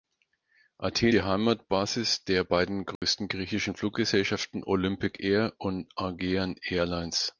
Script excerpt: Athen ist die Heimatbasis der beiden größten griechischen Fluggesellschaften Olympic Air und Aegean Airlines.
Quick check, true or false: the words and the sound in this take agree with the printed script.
false